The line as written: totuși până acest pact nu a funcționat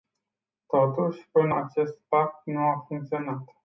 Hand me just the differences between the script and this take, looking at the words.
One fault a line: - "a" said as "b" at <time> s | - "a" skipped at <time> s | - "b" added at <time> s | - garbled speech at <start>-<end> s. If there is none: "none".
none